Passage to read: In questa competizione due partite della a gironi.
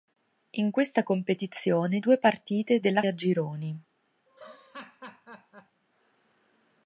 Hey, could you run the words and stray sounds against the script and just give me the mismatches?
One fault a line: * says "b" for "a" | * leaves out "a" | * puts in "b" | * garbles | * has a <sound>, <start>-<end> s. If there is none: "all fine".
* has a laugh, 4.3-5.8 s